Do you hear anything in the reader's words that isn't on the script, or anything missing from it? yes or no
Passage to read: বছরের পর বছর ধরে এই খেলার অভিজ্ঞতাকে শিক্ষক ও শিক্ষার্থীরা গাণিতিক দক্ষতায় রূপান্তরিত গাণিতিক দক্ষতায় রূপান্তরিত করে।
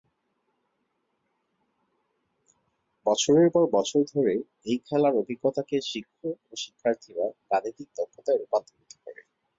yes